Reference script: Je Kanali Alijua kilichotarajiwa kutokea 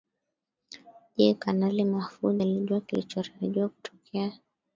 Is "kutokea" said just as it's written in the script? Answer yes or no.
yes